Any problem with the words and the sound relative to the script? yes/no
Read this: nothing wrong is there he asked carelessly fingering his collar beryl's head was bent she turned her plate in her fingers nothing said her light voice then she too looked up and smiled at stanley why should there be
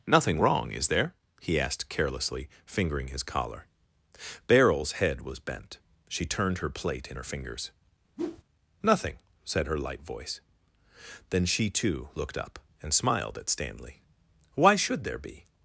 yes